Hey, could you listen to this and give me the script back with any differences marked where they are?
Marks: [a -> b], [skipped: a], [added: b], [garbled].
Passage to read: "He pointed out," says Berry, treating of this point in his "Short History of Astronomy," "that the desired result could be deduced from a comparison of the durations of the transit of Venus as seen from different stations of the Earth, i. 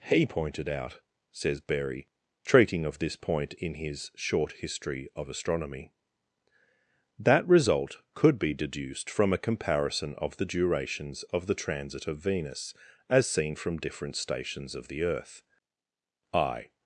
"He pointed out," says Berry, treating of this point in his "Short History of Astronomy," "that [skipped: the desired] result could be deduced from a comparison of the durations of the transit of Venus as seen from different stations of the Earth, i.